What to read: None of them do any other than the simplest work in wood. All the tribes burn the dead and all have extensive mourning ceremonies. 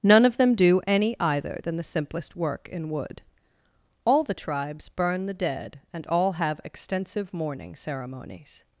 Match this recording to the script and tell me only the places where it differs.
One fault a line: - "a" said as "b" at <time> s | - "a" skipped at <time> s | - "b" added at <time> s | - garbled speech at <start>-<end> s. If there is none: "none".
- "other" said as "either" at 1.2 s